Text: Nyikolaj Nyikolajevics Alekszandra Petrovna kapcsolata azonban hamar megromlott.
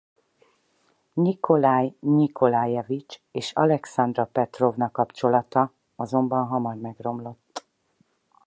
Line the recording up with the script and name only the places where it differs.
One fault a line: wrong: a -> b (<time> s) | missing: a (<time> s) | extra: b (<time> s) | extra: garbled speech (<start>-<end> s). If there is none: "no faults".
extra: és (3.3 s)